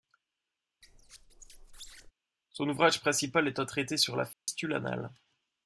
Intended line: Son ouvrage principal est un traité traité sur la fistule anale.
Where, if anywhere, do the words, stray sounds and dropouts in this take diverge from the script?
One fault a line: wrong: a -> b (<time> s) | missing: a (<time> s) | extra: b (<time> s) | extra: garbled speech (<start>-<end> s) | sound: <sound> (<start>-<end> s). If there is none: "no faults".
sound: squeak (0.8-2.1 s)
missing: traité (4.0 s)
sound: dropout (4.3-4.5 s)